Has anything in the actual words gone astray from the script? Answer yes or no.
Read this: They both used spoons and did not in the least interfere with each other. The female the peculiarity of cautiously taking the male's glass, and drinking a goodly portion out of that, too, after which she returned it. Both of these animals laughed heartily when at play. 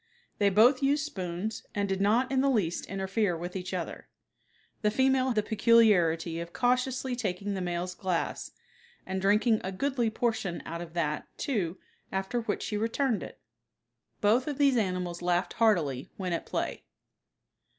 no